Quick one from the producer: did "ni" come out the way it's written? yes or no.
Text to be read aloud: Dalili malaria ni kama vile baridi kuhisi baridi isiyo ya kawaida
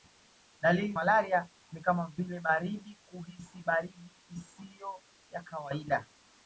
yes